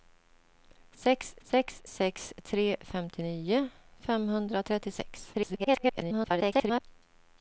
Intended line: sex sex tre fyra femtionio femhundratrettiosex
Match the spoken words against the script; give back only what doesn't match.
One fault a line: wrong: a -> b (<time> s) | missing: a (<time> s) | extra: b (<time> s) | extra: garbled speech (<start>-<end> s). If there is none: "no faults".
extra: sex (1.9 s)
missing: fyra (2.8 s)
extra: garbled speech (5.3-6.8 s)